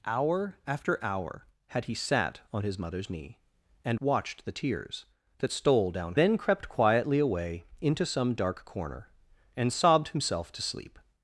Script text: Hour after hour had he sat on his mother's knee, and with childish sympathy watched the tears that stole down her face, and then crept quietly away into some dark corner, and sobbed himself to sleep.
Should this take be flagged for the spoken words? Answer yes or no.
yes